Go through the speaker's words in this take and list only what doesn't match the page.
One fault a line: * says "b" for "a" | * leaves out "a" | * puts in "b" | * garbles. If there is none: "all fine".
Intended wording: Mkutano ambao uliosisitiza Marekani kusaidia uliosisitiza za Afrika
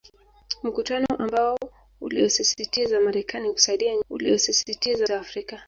all fine